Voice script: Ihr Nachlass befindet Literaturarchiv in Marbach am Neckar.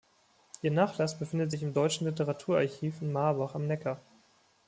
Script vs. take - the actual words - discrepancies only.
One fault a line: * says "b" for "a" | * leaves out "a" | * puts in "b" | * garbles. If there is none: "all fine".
* puts in "sich im Deutschen"